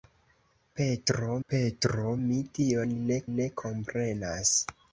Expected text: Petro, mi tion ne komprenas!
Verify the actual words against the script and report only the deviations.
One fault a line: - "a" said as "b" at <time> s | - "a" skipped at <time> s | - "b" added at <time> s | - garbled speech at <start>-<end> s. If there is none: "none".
- "petro" added at 1.5 s
- "ne" added at 3.4 s